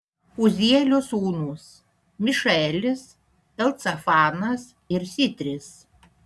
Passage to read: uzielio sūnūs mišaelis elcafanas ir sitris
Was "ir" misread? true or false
false